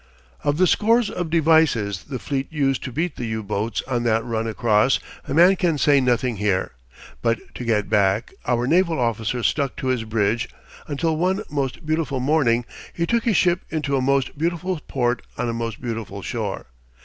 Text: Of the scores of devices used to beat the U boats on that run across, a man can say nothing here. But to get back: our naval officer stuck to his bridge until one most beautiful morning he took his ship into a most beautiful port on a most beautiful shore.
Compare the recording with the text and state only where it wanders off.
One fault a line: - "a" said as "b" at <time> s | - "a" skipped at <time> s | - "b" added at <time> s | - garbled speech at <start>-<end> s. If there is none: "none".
- "the fleet" added at 2.0 s